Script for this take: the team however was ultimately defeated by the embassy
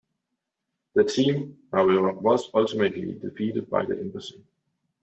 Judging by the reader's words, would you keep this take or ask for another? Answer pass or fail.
pass